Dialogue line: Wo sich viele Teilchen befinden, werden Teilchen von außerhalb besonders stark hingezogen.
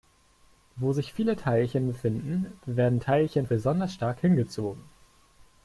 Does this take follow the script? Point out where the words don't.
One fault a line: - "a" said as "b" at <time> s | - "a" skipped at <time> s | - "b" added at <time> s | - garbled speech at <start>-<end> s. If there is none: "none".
- "von außerhalb" skipped at 3.5 s